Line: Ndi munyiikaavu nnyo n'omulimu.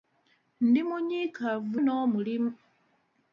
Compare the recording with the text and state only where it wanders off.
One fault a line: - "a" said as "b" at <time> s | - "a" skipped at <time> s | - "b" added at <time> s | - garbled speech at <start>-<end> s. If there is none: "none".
- "nnyo" skipped at 1.8 s